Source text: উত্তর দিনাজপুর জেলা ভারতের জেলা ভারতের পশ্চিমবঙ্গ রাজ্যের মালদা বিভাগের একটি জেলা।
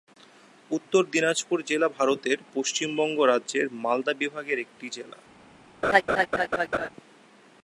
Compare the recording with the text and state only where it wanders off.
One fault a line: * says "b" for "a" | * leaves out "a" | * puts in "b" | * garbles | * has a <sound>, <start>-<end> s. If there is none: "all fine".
* leaves out "জেলা ভারতের"
* has a laugh, 5.8-6.9 s